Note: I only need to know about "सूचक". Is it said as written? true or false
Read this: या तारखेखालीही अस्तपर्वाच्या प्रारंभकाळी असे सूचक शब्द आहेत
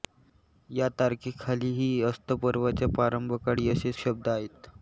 false